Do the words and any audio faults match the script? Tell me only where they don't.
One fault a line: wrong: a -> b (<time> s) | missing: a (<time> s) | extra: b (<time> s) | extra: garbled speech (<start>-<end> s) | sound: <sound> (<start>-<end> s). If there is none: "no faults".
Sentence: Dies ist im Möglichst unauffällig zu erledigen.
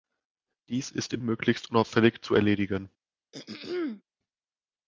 sound: throat clearing (3.3-4.0 s)